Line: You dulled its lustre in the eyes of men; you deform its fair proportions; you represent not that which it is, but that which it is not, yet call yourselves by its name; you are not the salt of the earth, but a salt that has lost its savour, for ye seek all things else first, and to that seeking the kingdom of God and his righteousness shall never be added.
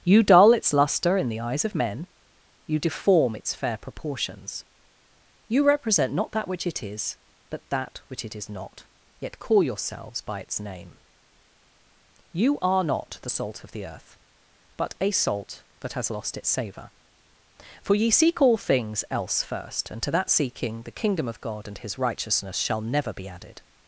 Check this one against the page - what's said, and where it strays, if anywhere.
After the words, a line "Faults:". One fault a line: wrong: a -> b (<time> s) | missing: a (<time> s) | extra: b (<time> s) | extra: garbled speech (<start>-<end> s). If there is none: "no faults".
You dull its lustre in the eyes of men; you deform its fair proportions; you represent not that which it is, but that which it is not, yet call yourselves by its name; you are not the salt of the earth, but a salt that has lost its savour, for ye seek all things else first, and to that seeking the kingdom of God and his righteousness shall never be added.
Faults:
wrong: dulled -> dull (0.2 s)